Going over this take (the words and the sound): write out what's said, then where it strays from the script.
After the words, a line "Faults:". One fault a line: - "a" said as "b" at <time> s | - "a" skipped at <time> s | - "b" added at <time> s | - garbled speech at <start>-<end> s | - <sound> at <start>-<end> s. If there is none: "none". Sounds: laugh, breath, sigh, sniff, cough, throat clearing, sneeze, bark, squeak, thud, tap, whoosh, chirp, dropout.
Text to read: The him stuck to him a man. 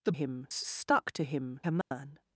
The him stuck to him a man.
Faults:
- dropout at 1.8-1.9 s